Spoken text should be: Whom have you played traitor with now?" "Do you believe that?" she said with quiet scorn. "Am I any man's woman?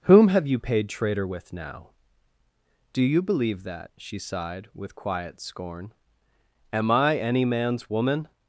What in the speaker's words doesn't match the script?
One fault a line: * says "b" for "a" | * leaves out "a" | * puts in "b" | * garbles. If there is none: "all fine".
* says "paid" for "played"
* says "sighed" for "said"